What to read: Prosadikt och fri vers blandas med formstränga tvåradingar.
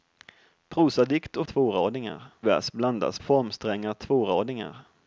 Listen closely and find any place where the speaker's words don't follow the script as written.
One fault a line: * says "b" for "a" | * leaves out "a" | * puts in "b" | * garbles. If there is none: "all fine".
* says "tvåradingar" for "fri"
* leaves out "med"